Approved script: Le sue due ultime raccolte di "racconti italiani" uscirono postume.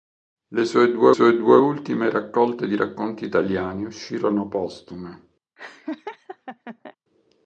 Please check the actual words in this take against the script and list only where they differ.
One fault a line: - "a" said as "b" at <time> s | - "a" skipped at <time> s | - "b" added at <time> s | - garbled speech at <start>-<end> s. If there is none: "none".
- "sue due" added at 1.1 s